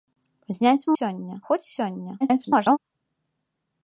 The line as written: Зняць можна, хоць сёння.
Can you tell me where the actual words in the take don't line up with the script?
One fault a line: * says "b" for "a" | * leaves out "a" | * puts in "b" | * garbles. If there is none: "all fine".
* says "сёння" for "можна"
* garbles